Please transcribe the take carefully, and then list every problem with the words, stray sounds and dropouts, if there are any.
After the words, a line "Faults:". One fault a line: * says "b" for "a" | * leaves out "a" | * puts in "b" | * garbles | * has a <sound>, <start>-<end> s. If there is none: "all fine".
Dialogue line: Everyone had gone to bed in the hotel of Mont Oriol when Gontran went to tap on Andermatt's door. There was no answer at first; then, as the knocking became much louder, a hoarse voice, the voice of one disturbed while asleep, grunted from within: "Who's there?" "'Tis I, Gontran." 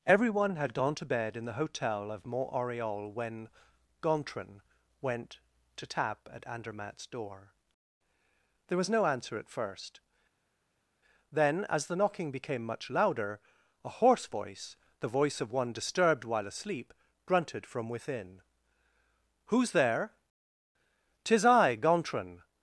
Everyone had gone to bed in the hotel of Mont Oriol when Gontran went to tap at Andermatt's door. There was no answer at first; then, as the knocking became much louder, a hoarse voice, the voice of one disturbed while asleep, grunted from within: "Who's there?" "'Tis I, Gontran."
Faults:
* says "at" for "on"